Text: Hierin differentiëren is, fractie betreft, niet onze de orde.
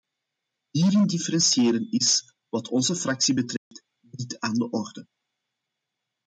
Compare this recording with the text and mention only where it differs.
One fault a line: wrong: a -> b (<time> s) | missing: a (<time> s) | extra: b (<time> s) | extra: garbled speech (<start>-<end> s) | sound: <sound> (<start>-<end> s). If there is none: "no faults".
extra: wat onze (2.5 s)
sound: dropout (3.6-3.7 s)
wrong: onze -> aan (4.4 s)